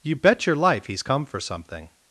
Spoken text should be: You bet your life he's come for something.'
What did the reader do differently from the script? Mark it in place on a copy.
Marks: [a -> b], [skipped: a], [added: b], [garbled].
You bet your life he's come for something.'